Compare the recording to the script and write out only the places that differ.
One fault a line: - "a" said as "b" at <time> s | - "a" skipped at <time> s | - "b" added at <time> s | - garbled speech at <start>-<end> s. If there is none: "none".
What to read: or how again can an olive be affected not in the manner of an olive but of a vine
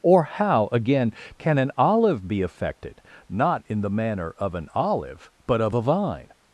none